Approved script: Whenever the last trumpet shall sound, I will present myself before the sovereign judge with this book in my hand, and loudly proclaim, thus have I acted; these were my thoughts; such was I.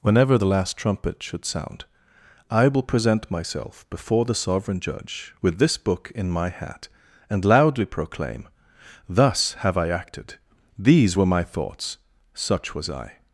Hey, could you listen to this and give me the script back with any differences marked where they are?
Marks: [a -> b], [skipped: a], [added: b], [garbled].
Whenever the last trumpet [shall -> should] sound, I will present myself before the sovereign judge with this book in my [hand, -> hat] and loudly proclaim, thus have I acted; these were my thoughts; such was I.